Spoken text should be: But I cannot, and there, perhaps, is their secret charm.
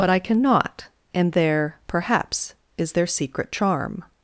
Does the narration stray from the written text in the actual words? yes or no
no